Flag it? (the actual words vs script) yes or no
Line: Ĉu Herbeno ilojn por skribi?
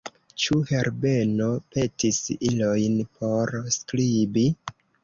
yes